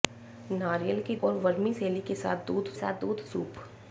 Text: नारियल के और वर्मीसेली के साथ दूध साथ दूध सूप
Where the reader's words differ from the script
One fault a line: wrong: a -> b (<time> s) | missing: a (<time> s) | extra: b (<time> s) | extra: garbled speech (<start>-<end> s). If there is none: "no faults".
no faults